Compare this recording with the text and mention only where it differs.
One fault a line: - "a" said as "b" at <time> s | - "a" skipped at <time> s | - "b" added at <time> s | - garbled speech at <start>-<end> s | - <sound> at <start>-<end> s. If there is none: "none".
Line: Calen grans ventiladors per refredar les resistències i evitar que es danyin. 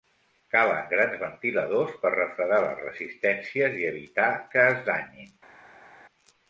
none